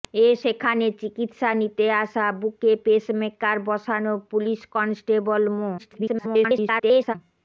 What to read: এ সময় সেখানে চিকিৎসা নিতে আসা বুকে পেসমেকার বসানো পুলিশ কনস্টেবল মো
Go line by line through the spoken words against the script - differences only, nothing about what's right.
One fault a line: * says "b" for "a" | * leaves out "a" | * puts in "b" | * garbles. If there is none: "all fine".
* leaves out "সময়"
* garbles